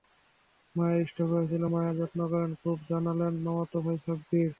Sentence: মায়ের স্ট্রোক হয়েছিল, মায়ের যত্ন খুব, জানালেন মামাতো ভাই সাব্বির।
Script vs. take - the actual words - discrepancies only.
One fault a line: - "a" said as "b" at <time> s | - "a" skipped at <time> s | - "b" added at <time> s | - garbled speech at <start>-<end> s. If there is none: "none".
- "করেন" added at 2.3 s